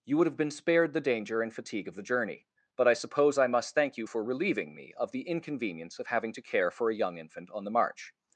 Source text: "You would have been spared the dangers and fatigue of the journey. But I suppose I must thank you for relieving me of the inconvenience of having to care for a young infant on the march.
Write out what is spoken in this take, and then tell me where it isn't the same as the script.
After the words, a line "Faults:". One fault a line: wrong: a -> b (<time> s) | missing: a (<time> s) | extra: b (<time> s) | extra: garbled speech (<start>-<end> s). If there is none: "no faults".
"You would have been spared the danger and fatigue of the journey. But I suppose I must thank you for relieving me of the inconvenience of having to care for a young infant on the march.
Faults:
wrong: dangers -> danger (1.0 s)